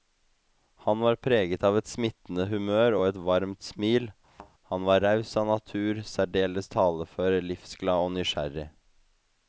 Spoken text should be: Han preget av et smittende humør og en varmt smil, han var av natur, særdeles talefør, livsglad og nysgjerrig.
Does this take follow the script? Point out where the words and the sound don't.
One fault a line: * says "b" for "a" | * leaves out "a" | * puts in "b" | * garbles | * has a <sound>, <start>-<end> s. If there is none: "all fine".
* puts in "var"
* says "et" for "en"
* has a thud, 4.3-4.5 s
* puts in "raus"